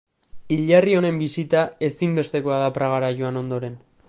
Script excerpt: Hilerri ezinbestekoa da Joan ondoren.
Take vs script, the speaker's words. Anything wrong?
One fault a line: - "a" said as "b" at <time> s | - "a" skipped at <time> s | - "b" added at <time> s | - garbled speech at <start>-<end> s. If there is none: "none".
- "honen bisita" added at 1.0 s
- "Pragara" added at 2.8 s